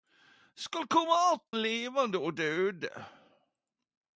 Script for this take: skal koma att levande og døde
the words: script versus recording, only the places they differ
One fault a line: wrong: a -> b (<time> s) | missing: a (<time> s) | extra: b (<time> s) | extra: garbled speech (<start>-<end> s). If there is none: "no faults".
no faults